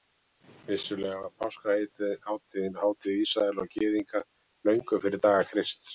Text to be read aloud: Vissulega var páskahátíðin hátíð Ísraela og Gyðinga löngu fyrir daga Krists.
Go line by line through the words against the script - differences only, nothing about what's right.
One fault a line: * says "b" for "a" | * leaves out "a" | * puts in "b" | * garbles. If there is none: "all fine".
all fine